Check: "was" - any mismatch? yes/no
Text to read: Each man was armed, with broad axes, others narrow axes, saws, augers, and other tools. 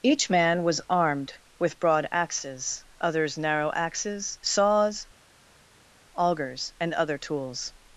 no